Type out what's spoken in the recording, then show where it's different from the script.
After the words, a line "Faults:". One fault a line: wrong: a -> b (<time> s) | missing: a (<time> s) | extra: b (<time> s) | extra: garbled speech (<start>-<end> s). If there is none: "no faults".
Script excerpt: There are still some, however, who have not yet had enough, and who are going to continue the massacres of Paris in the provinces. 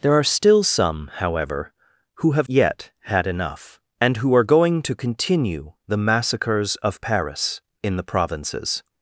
There are still some, however, who have yet had enough, and who are going to continue the massacres of Paris in the provinces.
Faults:
missing: not (2.5 s)